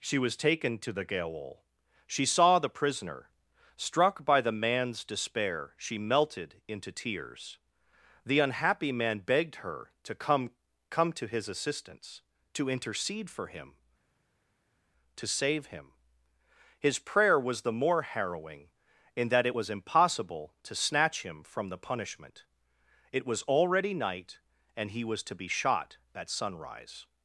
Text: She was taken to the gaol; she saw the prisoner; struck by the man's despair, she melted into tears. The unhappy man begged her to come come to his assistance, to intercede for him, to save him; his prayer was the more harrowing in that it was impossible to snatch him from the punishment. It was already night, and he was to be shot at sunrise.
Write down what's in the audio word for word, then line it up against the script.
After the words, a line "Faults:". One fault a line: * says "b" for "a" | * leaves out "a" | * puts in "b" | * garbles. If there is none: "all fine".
She was taken to the gaol; she saw the prisoner; struck by the man's despair, she melted into tears. The unhappy man begged her to come come to his assistance, to intercede for him, to save him; his prayer was the more harrowing in that it was impossible to snatch him from the punishment. It was already night, and he was to be shot at sunrise.
Faults:
all fine